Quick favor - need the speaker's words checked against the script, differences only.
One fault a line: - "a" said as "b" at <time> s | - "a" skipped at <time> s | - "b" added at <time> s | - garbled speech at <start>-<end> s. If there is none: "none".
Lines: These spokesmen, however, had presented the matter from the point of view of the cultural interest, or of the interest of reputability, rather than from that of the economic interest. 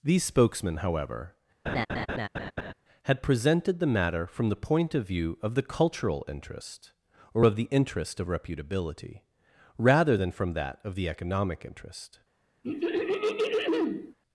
none